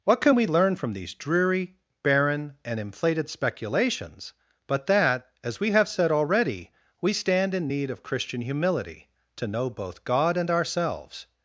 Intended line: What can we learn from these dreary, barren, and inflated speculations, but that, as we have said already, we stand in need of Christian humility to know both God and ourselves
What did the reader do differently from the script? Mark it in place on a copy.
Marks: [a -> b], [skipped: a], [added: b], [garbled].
What can we learn from these dreary, barren, and inflated speculations, but that, as we have said already, we stand in need of Christian humility to know both God and ourselves